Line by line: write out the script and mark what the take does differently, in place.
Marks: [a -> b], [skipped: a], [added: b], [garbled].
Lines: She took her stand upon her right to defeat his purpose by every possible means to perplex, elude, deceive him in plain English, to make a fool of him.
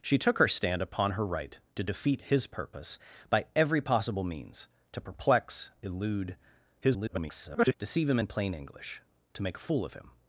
She took her stand upon her right to defeat his purpose by every possible means to perplex, elude, [garbled] deceive him in plain English, to make a fool of him.